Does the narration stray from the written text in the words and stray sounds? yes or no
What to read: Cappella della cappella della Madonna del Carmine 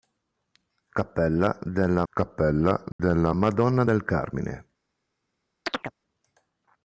yes